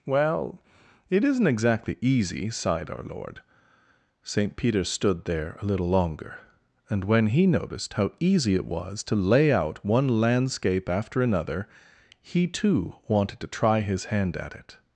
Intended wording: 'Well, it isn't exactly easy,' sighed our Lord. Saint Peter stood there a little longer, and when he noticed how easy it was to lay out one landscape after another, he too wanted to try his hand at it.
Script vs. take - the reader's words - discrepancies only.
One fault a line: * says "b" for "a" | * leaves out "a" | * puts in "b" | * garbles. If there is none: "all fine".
all fine